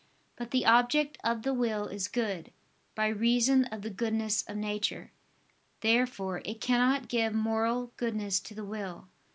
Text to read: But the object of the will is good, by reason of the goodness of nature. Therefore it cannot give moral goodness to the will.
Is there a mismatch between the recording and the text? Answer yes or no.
no